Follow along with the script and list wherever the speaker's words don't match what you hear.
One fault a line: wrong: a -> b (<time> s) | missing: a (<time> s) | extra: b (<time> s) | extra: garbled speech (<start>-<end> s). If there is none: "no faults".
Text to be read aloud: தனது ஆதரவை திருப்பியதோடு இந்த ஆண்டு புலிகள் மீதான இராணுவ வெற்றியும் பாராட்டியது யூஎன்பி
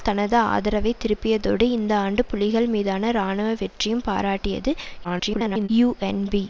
extra: garbled speech (5.0-5.7 s)